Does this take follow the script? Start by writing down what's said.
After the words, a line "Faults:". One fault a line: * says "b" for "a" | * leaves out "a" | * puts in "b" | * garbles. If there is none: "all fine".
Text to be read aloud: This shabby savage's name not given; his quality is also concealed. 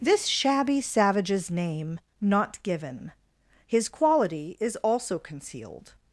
This shabby savage's name not given; his quality is also concealed.
Faults:
all fine